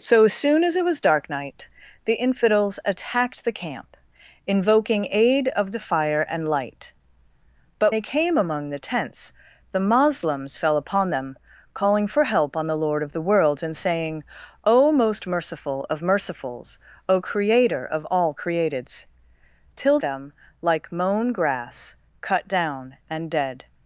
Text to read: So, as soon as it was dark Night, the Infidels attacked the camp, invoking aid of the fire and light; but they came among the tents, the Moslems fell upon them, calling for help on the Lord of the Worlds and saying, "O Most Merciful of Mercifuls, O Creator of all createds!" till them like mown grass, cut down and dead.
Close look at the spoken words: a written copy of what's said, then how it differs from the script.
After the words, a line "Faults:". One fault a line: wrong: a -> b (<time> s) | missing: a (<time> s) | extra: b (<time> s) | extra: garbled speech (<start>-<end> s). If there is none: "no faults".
So, as soon as it was dark Night, the Infidels attacked the camp, invoking aid of the fire and light; but they came among the tents, the Moslems fell upon them, calling for help on the Lord of the Worlds and saying, "O Most Merciful of Mercifuls, O Creator of all createds!" till them like mown grass, cut down and dead.
Faults:
no faults